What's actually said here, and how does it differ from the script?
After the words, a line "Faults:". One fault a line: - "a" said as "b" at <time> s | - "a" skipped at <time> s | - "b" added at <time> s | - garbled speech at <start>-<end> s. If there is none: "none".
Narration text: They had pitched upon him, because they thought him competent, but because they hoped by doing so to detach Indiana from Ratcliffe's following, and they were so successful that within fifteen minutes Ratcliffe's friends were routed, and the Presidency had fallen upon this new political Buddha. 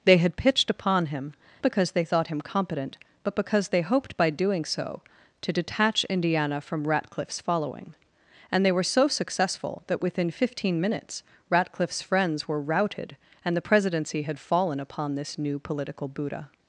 They had pitched upon him, because they thought him competent, but because they hoped by doing so to detach Indiana from Ratcliffe's following, and they were so successful that within fifteen minutes Ratcliffe's friends were routed, and the Presidency had fallen upon this new political Buddha.
Faults:
none